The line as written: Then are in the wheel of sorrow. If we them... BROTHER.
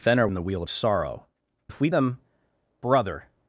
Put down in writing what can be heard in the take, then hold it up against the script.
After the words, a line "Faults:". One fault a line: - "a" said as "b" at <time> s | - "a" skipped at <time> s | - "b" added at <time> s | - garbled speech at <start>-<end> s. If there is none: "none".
Then are in the wheel of sorrow. If we them... BROTHER.
Faults:
none